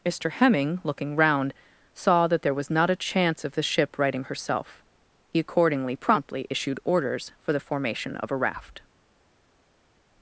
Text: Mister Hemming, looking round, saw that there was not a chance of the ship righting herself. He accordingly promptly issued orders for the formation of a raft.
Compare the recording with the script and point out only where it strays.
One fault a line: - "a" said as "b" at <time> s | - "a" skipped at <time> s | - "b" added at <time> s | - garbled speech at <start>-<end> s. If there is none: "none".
none